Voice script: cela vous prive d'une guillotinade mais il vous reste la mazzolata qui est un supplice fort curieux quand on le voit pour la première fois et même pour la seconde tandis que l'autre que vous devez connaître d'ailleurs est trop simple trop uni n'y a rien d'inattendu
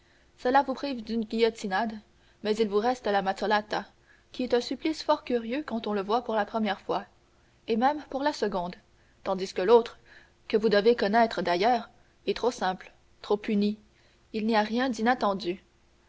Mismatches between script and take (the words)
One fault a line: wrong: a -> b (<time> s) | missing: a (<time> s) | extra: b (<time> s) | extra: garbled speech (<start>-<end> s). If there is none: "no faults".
extra: il (14.3 s)